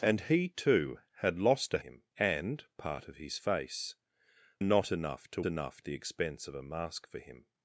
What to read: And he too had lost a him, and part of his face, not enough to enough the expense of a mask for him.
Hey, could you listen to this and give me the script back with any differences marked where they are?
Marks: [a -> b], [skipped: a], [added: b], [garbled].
And he too had lost a him, and part of his face, not enough to enough the expense of a mask for him.